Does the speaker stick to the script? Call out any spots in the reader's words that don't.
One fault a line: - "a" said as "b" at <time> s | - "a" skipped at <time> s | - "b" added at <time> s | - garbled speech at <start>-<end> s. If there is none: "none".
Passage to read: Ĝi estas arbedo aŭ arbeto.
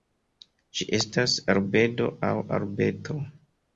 none